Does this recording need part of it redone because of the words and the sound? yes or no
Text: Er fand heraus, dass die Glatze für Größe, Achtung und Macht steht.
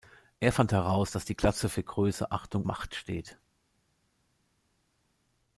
yes